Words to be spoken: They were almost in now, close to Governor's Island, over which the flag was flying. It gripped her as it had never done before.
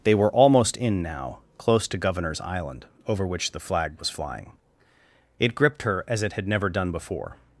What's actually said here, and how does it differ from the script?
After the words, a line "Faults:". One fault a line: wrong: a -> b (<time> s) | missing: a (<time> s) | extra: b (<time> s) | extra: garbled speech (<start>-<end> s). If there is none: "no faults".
They were almost in now, close to Governor's Island, over which the flag was flying. It gripped her as it had never done before.
Faults:
no faults